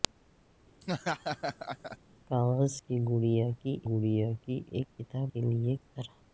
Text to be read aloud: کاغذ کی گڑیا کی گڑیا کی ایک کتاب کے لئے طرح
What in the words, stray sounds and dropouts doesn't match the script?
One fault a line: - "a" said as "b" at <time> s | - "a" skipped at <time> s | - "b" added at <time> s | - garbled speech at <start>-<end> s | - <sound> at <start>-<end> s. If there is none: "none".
- laugh at 0.8-2.0 s